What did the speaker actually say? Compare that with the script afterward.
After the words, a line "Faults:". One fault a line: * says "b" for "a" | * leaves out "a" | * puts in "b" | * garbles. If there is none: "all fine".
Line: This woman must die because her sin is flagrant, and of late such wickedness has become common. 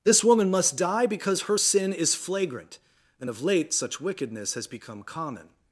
This woman must die because her sin is flagrant, and of late such wickedness has become common.
Faults:
all fine